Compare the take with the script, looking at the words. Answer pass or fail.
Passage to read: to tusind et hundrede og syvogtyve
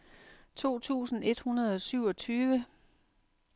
pass